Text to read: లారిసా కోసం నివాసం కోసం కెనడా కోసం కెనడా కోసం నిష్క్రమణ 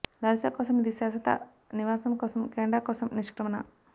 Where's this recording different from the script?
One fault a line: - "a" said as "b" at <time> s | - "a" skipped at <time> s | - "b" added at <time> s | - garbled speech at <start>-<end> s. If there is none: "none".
- "నివాసం కోసం కెనడా" said as "ఇది శాశ్వత నివాసం" at 0.8 s